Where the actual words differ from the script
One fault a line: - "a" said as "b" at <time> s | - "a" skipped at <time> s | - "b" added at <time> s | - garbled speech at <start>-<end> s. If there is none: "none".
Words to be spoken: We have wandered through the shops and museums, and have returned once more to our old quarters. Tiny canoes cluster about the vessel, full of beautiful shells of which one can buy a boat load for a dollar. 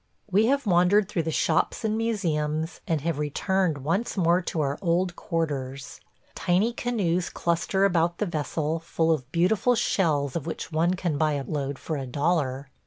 - "boat" skipped at 11.4 s